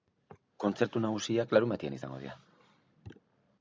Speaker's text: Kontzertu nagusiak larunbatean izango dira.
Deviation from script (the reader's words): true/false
false